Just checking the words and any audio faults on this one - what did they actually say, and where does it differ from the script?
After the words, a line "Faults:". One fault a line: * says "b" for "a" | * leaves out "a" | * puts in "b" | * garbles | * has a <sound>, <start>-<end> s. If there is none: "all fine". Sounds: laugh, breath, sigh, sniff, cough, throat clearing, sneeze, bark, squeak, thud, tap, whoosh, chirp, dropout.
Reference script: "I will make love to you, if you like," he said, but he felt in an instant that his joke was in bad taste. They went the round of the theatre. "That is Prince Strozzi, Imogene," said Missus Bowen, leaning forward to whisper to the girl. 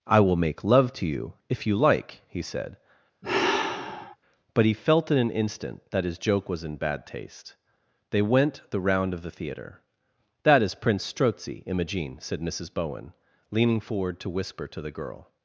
"I will make love to you, if you like," he said, but he felt in an instant that his joke was in bad taste. They went the round of the theatre. "That is Prince Strozzi, Imogene," said Missus Bowen, leaning forward to whisper to the girl.
Faults:
* has a sigh, 3.2-4.2 s